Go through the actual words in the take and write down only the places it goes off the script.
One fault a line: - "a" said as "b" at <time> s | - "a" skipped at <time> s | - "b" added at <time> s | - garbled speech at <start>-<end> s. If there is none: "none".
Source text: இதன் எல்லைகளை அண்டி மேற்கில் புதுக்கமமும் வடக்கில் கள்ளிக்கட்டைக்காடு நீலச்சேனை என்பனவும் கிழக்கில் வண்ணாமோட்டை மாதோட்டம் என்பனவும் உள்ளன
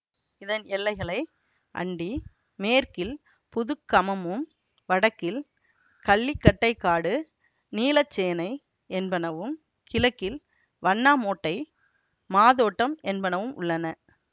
none